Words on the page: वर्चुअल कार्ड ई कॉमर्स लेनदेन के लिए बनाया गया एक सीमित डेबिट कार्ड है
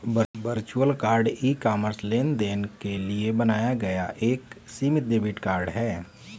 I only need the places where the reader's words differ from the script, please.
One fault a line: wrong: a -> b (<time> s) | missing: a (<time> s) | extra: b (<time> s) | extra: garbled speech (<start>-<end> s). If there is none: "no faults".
no faults